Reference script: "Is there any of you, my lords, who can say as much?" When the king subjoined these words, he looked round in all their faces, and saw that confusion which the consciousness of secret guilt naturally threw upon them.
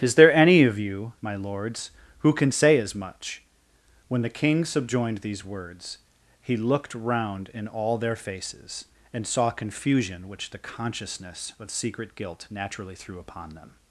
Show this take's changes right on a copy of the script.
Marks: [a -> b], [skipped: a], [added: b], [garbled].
"Is there any of you, my lords, who can say as much?" When the king subjoined these words, he looked round in all their faces, and saw [skipped: that] confusion which the consciousness of secret guilt naturally threw upon them.